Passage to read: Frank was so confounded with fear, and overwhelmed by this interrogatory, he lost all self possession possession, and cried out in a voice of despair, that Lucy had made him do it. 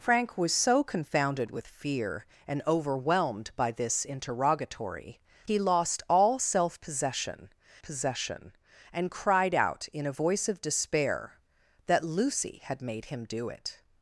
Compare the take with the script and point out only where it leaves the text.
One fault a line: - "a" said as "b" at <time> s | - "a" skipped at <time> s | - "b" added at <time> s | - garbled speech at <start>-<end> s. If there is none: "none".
none